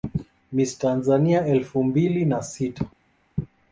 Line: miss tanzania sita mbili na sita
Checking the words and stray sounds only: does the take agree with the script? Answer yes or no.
no